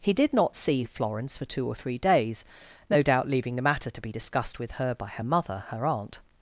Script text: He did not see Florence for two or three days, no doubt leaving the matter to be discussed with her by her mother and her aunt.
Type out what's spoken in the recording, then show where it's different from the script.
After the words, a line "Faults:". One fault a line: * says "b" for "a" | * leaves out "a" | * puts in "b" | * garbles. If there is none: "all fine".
He did not see Florence for two or three days, no doubt leaving the matter to be discussed with her by her mother her aunt.
Faults:
* leaves out "and"